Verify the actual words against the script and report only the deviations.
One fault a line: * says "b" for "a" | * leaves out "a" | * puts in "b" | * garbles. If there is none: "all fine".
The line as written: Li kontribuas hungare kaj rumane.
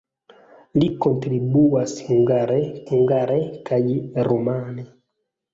* puts in "hungare"